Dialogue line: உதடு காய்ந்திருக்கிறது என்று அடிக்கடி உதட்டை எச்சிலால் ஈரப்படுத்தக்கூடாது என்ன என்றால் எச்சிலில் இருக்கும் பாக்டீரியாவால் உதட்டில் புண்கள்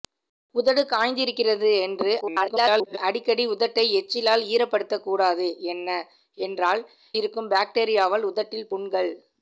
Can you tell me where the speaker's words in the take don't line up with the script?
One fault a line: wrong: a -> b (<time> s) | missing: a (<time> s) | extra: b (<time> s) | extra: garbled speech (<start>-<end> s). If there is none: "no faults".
extra: garbled speech (2.2-3.0 s)
missing: எச்சிலில் (6.8 s)